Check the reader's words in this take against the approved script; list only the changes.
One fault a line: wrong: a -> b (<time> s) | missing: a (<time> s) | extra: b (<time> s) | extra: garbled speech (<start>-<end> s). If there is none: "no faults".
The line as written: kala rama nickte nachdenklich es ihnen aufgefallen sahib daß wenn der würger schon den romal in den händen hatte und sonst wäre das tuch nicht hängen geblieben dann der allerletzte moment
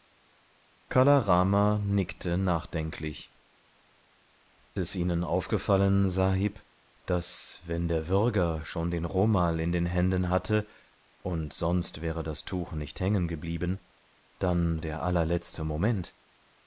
no faults